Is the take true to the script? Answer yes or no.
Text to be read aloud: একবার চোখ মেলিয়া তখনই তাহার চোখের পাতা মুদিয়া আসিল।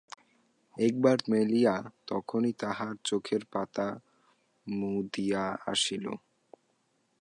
no